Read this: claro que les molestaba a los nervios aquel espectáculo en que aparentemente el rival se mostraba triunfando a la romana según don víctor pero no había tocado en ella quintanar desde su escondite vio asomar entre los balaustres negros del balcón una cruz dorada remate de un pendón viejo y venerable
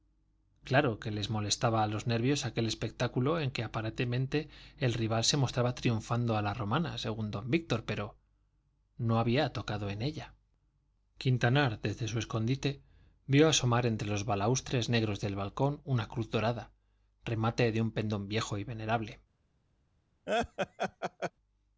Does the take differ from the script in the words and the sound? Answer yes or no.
yes